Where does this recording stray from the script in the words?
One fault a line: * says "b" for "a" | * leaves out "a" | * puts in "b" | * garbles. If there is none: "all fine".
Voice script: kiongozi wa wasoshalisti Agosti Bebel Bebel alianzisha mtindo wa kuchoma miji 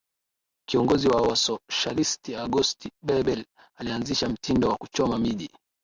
* leaves out "Bebel"